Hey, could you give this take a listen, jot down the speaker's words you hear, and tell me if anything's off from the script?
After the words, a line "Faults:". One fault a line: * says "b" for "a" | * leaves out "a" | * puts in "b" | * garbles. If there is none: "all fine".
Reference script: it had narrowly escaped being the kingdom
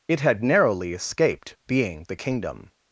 it had narrowly escaped being the kingdom
Faults:
all fine